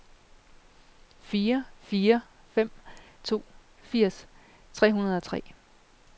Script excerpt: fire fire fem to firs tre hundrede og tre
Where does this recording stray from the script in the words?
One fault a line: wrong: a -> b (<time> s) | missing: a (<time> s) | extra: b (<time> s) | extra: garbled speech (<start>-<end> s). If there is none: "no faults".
no faults